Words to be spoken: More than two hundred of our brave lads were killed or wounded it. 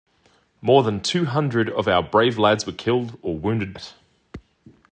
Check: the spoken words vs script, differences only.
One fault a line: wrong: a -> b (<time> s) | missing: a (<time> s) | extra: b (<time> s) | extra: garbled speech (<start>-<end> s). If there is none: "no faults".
no faults